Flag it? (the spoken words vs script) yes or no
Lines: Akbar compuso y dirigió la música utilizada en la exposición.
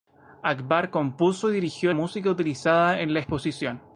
yes